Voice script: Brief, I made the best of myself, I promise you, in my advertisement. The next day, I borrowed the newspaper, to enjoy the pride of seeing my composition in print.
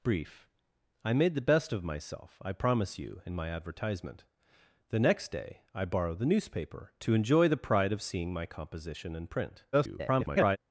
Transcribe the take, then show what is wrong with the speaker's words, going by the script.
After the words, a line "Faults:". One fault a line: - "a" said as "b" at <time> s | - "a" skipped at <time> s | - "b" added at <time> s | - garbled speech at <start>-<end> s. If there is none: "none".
Brief, I made the best of myself, I promise you, in my advertisement. The next day, I borrowed the newspaper, to enjoy the pride of seeing my composition in print. [garbled]
Faults:
- garbled speech at 9.7-10.6 s